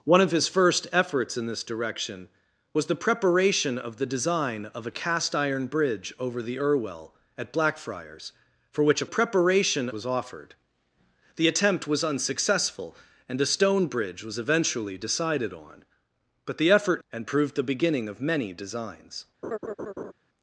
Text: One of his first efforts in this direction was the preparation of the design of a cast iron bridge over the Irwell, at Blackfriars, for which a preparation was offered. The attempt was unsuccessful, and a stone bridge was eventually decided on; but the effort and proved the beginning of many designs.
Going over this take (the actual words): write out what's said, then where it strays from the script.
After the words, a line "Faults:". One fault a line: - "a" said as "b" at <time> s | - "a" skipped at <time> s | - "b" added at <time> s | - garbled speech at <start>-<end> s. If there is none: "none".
One of his first efforts in this direction was the preparation of the design of a cast iron bridge over the Irwell, at Blackfriars, for which a preparation was offered. The attempt was unsuccessful, and a stone bridge was eventually decided on; but the effort and proved the beginning of many designs.
Faults:
none